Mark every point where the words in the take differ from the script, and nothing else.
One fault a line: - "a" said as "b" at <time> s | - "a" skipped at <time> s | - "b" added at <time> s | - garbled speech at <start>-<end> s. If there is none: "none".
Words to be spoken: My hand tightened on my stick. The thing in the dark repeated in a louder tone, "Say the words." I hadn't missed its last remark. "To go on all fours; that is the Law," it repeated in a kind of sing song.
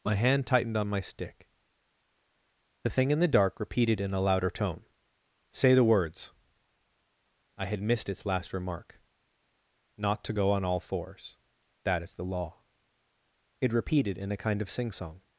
- "hadn't" said as "had" at 7.7 s
- "Not" added at 10.0 s